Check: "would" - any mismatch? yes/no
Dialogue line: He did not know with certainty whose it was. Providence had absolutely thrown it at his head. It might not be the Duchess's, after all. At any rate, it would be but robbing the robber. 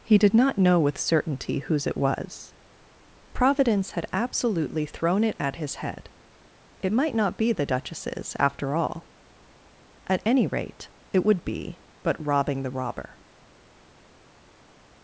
no